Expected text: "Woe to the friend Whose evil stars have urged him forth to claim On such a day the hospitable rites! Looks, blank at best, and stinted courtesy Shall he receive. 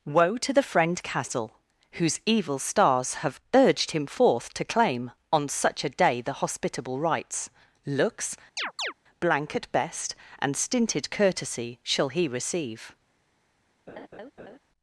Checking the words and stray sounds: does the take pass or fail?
fail